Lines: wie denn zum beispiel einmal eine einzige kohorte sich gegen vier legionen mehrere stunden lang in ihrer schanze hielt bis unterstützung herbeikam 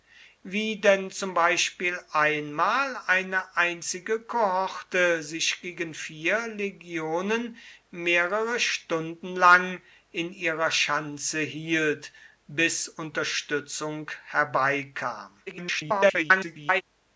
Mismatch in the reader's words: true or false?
true